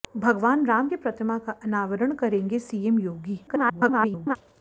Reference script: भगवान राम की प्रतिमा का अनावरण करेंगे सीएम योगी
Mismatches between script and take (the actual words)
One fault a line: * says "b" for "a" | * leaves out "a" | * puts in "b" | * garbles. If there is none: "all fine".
* garbles